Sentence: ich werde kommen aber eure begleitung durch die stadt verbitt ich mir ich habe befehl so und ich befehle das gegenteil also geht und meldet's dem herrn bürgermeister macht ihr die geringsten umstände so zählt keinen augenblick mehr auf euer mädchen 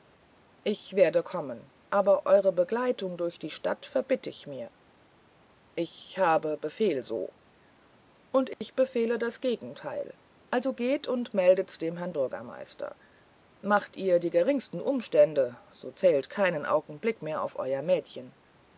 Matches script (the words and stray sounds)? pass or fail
fail